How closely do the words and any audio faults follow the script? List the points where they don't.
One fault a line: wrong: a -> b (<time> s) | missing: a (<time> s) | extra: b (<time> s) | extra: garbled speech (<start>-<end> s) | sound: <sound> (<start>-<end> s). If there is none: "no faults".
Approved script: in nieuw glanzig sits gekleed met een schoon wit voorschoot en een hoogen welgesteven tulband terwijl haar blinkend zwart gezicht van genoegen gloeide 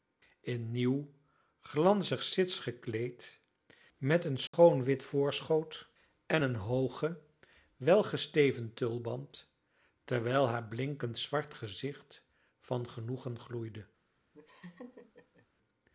sound: dropout (4.5-4.5 s)
sound: laugh (14.3-15.5 s)